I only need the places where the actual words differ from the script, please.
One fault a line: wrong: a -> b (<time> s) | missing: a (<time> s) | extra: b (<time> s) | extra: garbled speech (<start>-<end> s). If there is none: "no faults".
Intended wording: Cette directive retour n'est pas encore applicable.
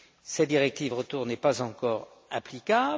no faults